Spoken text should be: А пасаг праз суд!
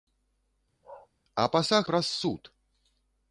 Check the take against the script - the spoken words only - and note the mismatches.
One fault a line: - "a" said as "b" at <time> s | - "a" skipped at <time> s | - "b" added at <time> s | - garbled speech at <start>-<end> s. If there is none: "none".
none